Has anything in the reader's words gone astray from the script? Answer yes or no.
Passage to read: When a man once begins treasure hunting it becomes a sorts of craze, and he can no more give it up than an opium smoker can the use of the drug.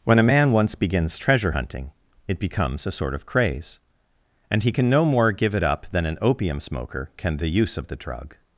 yes